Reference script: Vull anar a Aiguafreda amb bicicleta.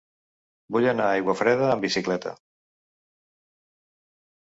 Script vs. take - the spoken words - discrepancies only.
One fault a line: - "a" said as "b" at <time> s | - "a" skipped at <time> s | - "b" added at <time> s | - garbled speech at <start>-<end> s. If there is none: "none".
none